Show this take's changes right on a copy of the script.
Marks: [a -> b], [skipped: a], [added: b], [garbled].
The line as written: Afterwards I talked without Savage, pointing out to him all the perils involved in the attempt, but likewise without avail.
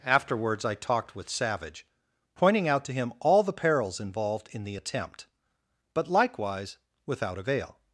Afterwards I talked [without -> with] Savage, pointing out to him all the perils involved in the attempt, but likewise without avail.